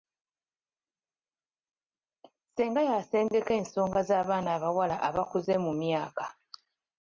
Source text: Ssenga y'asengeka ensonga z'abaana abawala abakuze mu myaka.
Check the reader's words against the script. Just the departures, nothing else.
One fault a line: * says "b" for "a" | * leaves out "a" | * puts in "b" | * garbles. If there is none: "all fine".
all fine